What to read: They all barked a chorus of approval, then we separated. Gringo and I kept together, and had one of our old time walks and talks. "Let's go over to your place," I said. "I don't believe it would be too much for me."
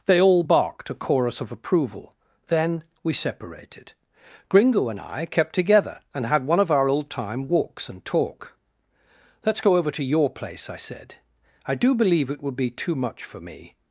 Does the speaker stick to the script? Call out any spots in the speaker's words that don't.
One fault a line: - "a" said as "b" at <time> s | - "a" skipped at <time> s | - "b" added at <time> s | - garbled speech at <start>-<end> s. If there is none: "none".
- "talks" said as "talk" at 8.0 s
- "don't" said as "do" at 11.7 s